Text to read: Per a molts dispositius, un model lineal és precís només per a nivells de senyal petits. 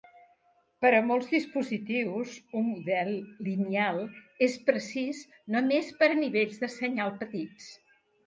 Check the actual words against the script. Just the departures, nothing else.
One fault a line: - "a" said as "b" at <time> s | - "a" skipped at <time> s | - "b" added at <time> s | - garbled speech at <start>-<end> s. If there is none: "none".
none